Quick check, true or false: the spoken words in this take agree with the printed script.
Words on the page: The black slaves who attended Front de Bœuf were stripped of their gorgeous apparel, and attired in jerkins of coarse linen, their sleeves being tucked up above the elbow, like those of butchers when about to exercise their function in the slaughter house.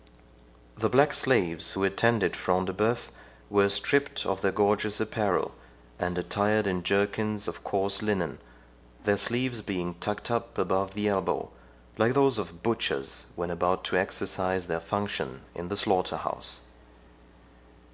true